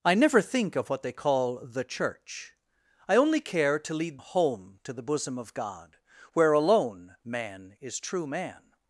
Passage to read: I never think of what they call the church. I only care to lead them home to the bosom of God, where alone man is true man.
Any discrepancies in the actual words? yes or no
yes